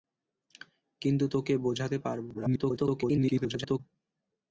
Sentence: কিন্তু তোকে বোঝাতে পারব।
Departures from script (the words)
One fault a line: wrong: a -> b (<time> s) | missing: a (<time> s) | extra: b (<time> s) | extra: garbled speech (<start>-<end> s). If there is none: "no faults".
extra: garbled speech (2.3-3.8 s)